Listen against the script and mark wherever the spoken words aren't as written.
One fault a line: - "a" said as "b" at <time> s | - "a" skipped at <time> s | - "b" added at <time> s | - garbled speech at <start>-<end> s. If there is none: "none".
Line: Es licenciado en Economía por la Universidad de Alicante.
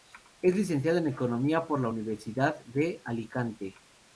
none